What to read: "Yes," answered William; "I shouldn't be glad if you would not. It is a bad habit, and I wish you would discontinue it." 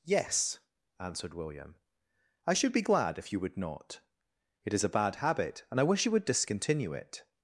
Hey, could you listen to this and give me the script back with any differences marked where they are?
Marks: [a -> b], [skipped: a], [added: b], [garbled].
"Yes," answered William; "I [shouldn't -> should] be glad if you would not. It is a bad habit, and I wish you would discontinue it."